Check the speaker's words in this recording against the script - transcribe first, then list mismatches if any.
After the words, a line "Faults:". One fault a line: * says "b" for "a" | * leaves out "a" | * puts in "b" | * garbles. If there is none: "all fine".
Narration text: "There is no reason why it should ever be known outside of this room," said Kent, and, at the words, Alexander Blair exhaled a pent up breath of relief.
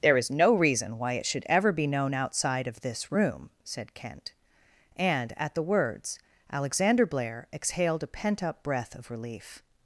"There is no reason why it should ever be known outside of this room," said Kent, and, at the words, Alexander Blair exhaled a pent up breath of relief.
Faults:
all fine